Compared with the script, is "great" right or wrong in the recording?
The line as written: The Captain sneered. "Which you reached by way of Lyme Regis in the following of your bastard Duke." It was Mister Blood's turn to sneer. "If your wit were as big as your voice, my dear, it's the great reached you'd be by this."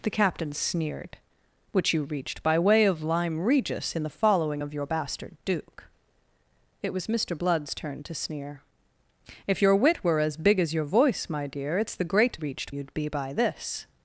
right